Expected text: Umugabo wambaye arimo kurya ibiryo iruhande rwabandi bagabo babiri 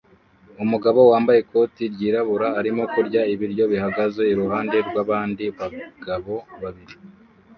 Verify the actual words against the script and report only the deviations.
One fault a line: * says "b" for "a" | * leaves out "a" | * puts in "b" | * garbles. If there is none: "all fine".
* puts in "ikoti ryirabura"
* puts in "bihagaze"